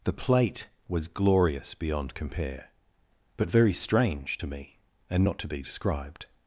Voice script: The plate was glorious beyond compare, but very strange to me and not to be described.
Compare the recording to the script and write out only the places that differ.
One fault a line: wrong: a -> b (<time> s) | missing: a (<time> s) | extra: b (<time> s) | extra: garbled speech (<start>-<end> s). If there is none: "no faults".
no faults